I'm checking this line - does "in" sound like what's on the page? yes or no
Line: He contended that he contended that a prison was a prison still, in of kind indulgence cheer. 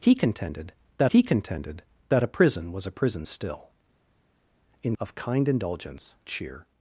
yes